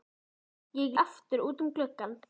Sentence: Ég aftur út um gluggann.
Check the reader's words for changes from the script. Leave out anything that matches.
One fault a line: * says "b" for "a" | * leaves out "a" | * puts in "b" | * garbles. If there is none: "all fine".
all fine